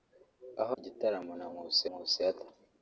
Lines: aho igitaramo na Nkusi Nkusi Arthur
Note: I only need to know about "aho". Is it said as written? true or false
true